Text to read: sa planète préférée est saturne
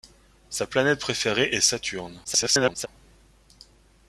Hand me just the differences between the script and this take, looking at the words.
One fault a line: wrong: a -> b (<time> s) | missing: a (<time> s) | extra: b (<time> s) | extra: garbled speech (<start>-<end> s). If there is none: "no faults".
extra: garbled speech (2.2-2.9 s)